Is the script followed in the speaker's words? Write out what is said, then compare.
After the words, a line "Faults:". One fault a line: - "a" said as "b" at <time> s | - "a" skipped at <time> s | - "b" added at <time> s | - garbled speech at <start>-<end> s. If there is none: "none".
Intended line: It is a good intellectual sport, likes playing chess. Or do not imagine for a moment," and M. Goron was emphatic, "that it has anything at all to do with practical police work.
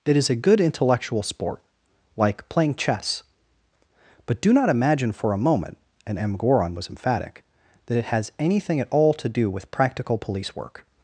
It is a good intellectual sport, like playing chess. But do not imagine for a moment," and M. Goron was emphatic, "that it has anything at all to do with practical police work.
Faults:
- "likes" said as "like" at 2.2 s
- "Or" said as "But" at 4.2 s